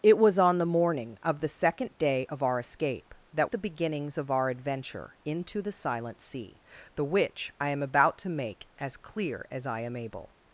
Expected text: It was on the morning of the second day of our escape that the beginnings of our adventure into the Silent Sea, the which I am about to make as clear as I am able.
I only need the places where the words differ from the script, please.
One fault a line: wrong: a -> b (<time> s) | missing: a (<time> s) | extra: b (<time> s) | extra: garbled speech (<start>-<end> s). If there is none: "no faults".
no faults